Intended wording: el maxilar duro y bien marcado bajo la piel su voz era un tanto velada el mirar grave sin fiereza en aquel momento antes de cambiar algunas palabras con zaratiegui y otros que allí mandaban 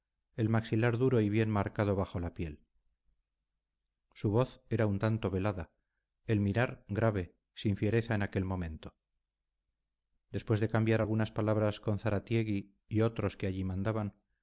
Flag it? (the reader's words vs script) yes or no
yes